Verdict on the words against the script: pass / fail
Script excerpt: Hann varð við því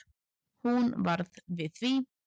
fail